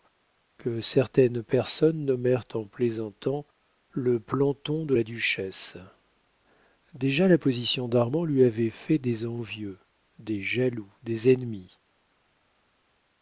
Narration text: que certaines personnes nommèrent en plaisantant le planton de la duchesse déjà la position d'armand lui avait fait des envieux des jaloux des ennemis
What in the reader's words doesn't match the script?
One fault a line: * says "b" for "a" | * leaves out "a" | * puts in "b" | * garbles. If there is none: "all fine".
all fine